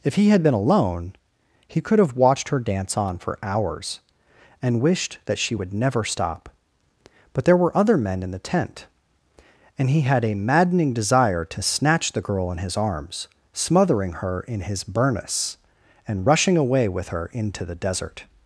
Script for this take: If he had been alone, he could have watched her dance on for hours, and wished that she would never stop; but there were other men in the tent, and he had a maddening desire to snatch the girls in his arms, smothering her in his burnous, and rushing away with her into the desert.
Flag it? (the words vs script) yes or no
yes